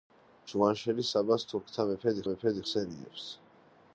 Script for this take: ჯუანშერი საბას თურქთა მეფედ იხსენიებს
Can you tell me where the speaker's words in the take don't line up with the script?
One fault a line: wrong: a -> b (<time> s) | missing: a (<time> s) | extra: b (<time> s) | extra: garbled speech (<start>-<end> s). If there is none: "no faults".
extra: მეფედ (2.3 s)